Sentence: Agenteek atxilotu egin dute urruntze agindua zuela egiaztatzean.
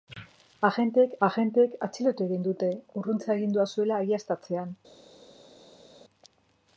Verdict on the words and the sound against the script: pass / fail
fail